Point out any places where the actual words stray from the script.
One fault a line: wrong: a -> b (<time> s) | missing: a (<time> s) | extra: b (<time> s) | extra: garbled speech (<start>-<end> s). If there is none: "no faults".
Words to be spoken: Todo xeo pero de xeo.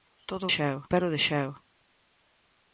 no faults